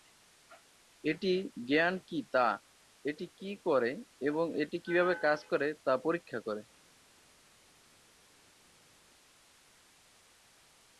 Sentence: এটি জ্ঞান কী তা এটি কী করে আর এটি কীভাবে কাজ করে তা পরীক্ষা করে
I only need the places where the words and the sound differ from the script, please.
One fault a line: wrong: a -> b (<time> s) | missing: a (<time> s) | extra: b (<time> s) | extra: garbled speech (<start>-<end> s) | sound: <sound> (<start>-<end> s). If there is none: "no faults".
wrong: আর -> এবং (4.2 s)